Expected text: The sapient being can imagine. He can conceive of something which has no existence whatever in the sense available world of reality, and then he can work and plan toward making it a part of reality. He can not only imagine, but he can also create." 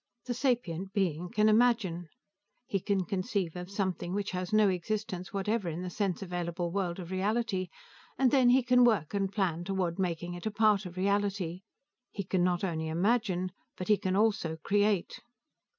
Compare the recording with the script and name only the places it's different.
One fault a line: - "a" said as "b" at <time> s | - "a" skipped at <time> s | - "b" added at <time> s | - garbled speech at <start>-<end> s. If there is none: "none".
none